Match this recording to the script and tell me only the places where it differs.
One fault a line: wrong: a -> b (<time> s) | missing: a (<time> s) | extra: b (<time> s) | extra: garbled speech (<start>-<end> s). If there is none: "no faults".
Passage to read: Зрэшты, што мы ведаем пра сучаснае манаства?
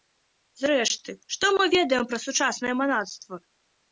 no faults